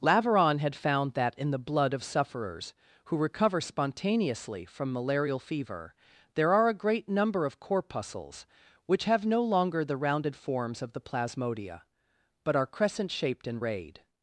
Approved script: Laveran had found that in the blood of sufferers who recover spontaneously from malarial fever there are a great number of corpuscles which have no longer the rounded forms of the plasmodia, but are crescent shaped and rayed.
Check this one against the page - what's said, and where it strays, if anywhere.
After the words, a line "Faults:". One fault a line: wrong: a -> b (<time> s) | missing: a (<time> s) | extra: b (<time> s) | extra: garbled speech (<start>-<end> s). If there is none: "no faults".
Laveran had found that in the blood of sufferers who recover spontaneously from malarial fever there are a great number of corpuscles which have no longer the rounded forms of the plasmodia, but are crescent shaped and rayed.
Faults:
no faults